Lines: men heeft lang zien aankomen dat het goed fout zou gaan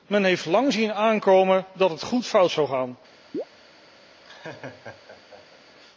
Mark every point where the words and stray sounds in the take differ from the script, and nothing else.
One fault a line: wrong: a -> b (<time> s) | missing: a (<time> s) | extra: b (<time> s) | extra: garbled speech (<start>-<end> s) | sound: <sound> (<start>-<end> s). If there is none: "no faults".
sound: chirp (3.3-3.4 s)
sound: laugh (4.2-5.6 s)